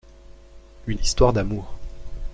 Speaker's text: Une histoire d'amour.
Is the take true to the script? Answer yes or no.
yes